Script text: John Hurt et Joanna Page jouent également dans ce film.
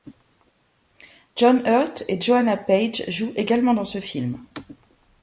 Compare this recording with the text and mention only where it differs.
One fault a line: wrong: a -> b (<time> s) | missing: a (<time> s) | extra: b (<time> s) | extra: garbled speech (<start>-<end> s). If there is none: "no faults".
no faults